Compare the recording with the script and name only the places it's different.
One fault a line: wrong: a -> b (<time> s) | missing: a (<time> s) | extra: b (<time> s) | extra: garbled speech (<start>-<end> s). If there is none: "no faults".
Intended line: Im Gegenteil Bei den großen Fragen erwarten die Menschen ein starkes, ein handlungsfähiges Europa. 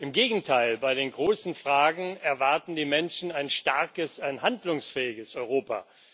no faults